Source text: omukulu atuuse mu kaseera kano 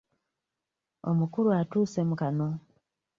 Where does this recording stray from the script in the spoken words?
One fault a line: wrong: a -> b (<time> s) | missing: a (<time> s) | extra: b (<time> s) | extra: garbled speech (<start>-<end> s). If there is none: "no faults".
missing: kaseera (2.1 s)